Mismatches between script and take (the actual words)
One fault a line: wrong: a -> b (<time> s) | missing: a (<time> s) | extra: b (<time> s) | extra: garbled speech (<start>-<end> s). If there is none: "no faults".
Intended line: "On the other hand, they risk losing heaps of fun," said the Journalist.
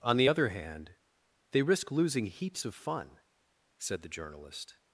no faults